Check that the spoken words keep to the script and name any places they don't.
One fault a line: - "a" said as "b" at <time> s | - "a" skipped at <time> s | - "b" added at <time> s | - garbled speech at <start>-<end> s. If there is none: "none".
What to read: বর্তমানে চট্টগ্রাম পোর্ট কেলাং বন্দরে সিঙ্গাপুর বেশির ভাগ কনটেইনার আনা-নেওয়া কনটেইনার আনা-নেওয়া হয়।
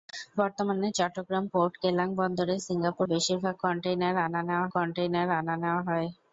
none